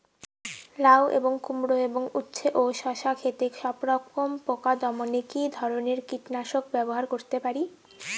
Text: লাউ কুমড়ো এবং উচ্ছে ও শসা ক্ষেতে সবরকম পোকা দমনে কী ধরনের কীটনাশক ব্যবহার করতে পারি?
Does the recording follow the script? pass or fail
fail